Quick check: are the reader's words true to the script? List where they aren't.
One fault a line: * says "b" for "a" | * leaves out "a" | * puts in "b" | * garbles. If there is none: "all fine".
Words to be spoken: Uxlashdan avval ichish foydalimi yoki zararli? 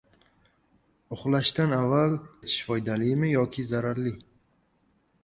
all fine